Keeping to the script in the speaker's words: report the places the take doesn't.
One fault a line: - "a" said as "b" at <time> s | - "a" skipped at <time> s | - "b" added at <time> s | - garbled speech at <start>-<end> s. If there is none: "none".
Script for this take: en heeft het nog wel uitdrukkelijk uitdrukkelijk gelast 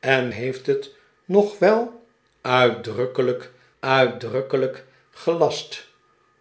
none